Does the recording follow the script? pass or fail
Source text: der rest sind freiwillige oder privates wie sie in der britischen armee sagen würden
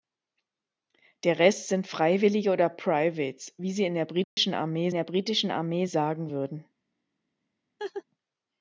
fail